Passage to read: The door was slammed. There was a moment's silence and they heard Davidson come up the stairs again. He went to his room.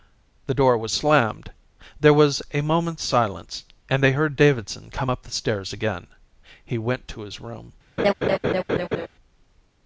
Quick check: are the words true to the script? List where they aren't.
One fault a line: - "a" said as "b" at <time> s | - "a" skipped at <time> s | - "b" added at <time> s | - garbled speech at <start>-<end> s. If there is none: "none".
none